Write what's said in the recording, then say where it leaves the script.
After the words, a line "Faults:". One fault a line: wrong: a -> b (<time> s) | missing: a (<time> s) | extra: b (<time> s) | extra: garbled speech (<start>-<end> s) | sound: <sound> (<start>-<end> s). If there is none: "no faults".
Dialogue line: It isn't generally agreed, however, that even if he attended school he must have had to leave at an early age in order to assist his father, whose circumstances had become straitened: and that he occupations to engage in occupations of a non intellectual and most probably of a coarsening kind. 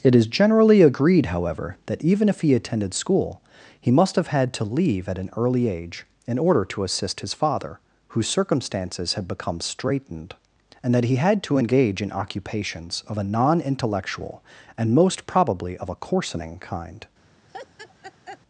It is generally agreed, however, that even if he attended school he must have had to leave at an early age in order to assist his father, whose circumstances had become straitened: and that he had to engage in occupations of a non intellectual and most probably of a coarsening kind.
Faults:
wrong: isn't -> is (0.1 s)
wrong: occupations -> had (11.2 s)
sound: laugh (17.5-18.4 s)